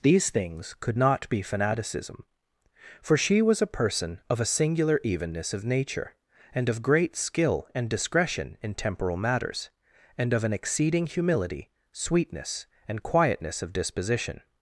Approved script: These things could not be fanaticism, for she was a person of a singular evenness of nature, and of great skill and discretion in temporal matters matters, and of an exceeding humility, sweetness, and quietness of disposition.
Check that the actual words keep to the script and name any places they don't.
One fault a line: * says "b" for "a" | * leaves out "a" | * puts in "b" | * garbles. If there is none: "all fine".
* leaves out "matters"